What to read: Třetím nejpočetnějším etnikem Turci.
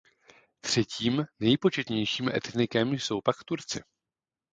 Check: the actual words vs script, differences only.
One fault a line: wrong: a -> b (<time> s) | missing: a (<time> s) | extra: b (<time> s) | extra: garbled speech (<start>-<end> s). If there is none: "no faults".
extra: jsou pak (2.9 s)